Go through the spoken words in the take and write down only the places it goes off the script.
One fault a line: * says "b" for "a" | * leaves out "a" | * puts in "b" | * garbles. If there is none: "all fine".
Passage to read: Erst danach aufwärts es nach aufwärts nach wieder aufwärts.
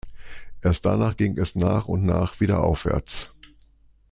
* says "ging" for "aufwärts"
* says "und" for "aufwärts"